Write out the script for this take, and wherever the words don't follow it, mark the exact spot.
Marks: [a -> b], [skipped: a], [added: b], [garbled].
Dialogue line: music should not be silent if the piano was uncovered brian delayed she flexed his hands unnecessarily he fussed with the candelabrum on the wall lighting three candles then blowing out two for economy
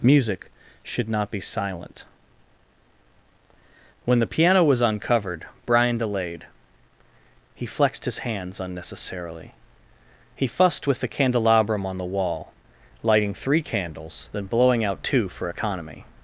music should not be silent [if -> when] the piano was uncovered brian delayed [she -> he] flexed his hands unnecessarily he fussed with the candelabrum on the wall lighting three candles then blowing out two for economy